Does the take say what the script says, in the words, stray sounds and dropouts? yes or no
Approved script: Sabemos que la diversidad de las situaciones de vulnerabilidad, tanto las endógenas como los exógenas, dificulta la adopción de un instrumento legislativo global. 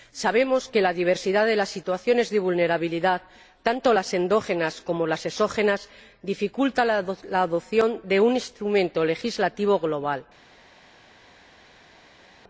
no